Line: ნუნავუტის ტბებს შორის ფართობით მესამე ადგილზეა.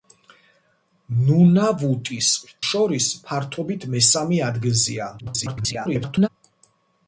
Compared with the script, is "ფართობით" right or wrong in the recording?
right